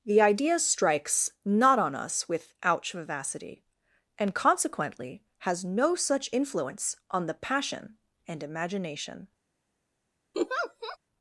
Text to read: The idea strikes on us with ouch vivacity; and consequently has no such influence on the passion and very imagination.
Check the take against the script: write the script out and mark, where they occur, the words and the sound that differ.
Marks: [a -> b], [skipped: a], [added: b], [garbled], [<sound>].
The idea strikes [added: not] on us with ouch vivacity; and consequently has no such influence on the passion and [skipped: very] imagination. [laugh]